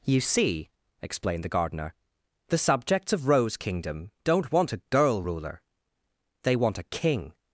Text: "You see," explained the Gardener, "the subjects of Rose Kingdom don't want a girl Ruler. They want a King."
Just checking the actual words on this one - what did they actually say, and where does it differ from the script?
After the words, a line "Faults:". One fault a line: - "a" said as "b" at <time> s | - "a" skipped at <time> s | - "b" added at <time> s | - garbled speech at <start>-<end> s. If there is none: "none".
"You see," explained the Gardener, "the subjects of Rose Kingdom don't want a girl Ruler. They want a King."
Faults:
none